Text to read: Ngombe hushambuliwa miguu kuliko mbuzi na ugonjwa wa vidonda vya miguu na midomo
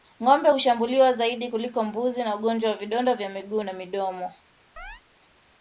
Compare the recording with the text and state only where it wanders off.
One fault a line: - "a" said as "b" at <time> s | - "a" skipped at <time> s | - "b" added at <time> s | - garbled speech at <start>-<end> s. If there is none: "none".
- "miguu" said as "zaidi" at 1.1 s